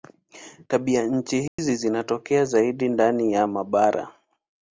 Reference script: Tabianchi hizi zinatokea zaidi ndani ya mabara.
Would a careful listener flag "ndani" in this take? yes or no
no